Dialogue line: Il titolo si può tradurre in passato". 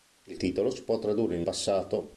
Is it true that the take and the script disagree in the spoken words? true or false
false